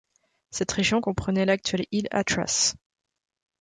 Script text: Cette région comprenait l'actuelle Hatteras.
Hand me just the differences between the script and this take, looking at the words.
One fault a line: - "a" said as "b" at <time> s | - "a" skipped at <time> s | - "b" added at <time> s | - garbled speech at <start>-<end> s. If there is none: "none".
- "île" added at 1.9 s